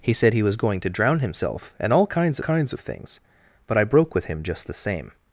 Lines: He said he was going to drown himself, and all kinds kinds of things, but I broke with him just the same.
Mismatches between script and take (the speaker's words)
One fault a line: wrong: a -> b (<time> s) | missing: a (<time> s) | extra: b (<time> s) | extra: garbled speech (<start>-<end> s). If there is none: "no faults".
no faults